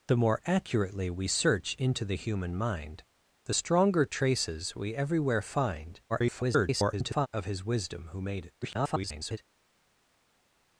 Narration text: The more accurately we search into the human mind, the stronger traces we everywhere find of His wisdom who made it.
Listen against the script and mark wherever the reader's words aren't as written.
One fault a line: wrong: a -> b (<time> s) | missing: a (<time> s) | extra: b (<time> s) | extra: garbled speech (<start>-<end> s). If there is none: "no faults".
extra: garbled speech (6.1-7.3 s)
extra: garbled speech (8.6-9.4 s)